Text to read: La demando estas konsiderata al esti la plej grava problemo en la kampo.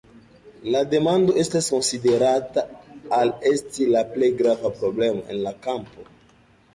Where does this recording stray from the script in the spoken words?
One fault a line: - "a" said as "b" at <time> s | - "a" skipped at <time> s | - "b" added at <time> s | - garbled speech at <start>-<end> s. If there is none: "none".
none